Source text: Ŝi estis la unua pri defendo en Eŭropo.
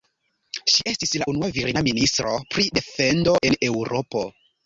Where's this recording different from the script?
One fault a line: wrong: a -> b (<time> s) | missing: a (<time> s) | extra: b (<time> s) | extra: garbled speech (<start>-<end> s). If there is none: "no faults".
extra: virina ministro (1.6 s)